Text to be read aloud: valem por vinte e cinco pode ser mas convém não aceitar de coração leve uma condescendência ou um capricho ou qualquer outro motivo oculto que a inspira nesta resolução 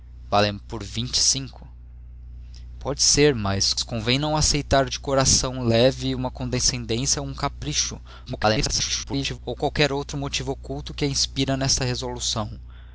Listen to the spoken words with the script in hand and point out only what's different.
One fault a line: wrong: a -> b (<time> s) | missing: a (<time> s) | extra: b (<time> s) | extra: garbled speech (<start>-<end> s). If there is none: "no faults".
extra: garbled speech (8.3-9.4 s)